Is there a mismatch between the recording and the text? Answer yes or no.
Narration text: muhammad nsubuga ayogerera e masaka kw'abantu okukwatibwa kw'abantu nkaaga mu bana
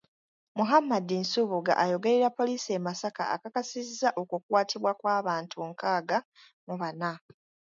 yes